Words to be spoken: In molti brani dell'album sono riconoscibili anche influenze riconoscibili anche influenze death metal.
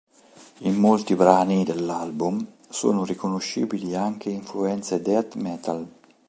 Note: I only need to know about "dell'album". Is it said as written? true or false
true